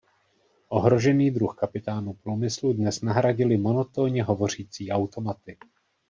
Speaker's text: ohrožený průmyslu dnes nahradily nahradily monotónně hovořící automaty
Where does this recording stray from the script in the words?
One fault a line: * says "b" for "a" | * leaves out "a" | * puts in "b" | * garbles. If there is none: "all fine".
* puts in "druh kapitánů"
* leaves out "nahradily"